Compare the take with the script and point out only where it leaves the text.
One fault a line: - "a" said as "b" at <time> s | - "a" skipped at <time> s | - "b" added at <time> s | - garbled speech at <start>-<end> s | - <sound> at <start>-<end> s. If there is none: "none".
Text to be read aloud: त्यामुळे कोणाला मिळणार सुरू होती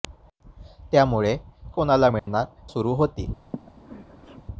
- dropout at 2.2-2.3 s
- sneeze at 3.5-4.4 s